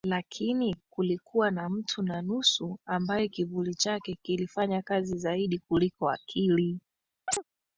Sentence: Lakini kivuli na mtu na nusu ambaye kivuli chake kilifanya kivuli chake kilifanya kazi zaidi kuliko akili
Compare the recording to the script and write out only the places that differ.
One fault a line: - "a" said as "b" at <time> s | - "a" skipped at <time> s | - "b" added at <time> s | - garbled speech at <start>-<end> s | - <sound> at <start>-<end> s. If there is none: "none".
- "kivuli" said as "kulikuwa" at 0.9 s
- "kivuli chake kilifanya" skipped at 4.8 s
- chirp at 7.3-7.4 s